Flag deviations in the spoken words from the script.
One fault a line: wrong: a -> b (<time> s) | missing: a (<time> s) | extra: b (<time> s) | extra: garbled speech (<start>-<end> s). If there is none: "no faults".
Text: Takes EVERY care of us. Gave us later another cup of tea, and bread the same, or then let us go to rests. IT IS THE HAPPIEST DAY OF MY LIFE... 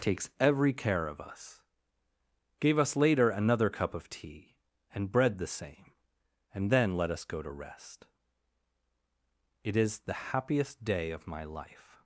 wrong: or -> and (6.5 s)
wrong: rests -> rest (7.5 s)